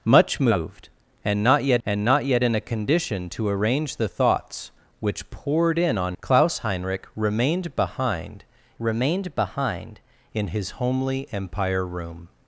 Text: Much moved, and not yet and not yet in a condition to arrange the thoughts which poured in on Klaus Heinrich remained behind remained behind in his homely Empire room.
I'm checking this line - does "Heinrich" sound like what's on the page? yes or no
yes